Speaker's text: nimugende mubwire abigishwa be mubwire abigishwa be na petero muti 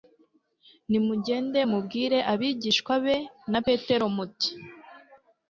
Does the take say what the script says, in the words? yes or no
no